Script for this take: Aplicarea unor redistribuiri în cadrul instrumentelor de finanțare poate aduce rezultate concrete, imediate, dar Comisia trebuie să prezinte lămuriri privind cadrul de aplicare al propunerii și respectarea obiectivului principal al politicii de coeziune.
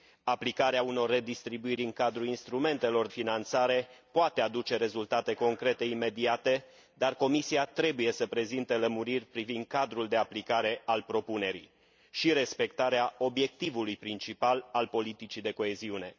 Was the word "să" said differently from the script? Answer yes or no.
no